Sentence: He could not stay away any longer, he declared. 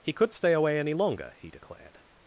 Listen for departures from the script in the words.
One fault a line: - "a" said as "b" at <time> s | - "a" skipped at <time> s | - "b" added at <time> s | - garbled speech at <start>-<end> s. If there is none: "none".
- "not" skipped at 0.3 s